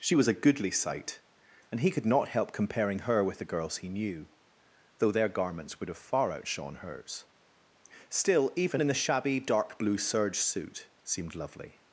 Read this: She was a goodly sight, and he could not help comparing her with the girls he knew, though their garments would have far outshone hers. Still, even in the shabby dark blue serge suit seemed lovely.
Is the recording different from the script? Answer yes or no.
no